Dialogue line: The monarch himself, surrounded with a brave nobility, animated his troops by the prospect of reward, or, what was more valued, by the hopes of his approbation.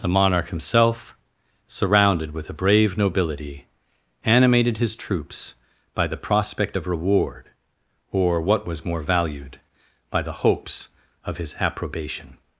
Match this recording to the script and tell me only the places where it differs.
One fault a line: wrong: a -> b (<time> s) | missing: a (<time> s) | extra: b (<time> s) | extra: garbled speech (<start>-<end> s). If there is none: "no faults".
no faults